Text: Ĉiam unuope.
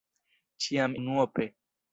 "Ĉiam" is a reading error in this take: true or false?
false